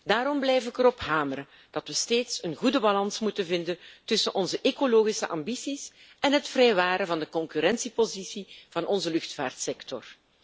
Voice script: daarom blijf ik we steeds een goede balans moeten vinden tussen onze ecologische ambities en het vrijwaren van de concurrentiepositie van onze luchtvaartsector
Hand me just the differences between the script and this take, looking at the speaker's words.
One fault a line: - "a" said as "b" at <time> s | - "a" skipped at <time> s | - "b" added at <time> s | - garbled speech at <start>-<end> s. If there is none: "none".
- "erop hameren dat" added at 0.8 s